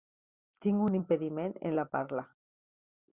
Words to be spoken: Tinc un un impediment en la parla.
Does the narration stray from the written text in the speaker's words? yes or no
yes